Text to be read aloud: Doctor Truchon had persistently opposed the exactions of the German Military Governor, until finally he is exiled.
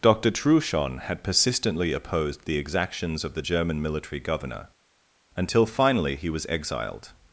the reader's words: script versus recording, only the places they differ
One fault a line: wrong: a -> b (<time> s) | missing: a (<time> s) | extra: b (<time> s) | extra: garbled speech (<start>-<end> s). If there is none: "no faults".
wrong: is -> was (6.3 s)